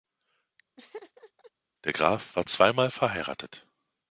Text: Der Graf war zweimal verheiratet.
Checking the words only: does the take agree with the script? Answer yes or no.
yes